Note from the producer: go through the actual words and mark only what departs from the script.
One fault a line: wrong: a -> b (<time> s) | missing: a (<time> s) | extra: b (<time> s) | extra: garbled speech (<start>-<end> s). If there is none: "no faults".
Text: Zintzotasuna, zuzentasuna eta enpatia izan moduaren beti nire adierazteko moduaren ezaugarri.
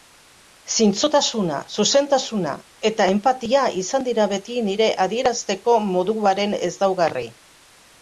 wrong: moduaren -> dira (4.1 s)